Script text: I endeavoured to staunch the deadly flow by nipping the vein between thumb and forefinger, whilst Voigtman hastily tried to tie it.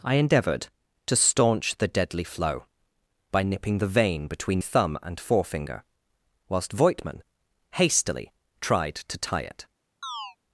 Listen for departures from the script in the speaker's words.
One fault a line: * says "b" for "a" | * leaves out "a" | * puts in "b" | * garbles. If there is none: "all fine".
all fine